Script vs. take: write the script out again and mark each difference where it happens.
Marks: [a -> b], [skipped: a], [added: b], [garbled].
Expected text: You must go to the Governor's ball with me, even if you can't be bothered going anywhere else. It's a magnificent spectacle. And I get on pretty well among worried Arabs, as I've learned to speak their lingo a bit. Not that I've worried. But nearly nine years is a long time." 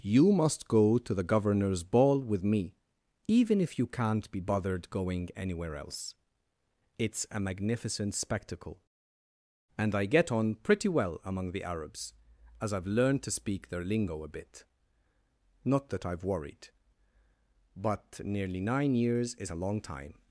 You must go to the Governor's ball with me, even if you can't be bothered going anywhere else. It's a magnificent spectacle. And I get on pretty well among [worried -> the] Arabs, as I've learned to speak their lingo a bit. Not that I've worried. But nearly nine years is a long time."